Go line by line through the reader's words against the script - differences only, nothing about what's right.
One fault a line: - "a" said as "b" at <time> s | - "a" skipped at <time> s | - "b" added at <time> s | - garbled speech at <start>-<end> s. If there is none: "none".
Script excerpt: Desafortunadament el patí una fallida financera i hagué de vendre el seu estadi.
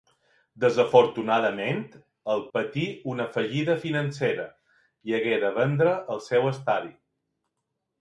none